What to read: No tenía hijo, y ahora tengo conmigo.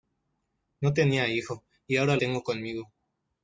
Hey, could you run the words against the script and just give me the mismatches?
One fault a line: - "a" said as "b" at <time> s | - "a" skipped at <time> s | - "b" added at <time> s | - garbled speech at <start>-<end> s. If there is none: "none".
none